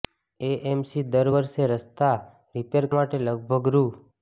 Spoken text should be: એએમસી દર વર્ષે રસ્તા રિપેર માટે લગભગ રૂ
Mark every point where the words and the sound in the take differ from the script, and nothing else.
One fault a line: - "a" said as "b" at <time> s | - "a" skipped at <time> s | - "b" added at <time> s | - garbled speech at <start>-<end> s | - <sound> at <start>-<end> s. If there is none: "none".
none